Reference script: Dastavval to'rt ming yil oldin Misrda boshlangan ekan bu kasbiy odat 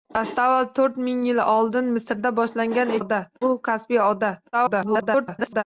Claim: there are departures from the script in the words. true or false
true